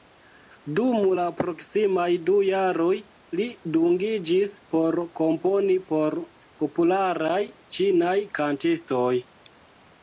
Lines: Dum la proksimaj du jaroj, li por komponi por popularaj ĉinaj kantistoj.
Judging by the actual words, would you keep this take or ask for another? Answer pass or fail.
fail